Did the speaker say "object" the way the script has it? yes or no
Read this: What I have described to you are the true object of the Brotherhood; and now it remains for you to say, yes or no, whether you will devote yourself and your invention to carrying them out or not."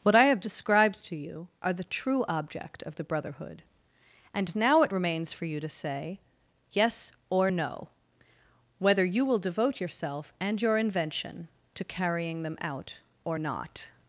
yes